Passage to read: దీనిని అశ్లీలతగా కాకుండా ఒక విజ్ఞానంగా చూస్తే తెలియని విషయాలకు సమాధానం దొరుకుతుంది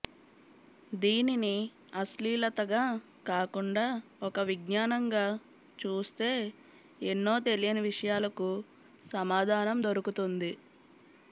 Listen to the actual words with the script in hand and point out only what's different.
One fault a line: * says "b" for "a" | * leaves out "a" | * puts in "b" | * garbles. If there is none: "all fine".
* puts in "ఎన్నో"